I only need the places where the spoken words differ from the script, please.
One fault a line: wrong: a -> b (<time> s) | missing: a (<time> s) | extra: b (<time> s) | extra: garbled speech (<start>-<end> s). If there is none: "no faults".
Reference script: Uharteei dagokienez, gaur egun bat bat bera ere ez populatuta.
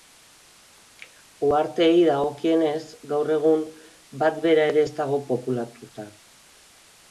missing: bat (4.4 s)
extra: dago (5.0 s)